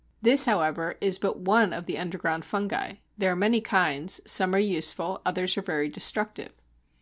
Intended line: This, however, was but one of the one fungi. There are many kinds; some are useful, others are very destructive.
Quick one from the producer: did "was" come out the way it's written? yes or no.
no